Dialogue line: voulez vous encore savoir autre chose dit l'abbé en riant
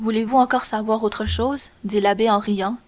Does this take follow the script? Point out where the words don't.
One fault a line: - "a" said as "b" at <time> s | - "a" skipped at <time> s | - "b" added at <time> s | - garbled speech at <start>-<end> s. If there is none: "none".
none